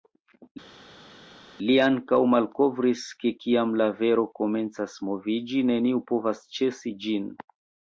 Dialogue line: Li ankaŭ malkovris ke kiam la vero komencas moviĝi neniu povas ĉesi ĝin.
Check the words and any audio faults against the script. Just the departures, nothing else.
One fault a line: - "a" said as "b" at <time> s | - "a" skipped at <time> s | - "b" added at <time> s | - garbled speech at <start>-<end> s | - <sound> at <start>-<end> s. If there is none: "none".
none